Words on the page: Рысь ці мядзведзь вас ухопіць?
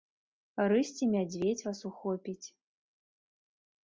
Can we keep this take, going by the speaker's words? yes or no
yes